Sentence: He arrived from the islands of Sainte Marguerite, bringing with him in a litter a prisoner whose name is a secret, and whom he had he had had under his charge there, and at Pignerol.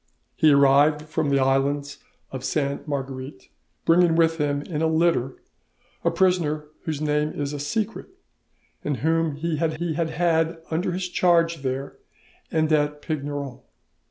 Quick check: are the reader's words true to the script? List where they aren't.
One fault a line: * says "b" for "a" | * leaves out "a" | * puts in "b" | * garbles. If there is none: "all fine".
all fine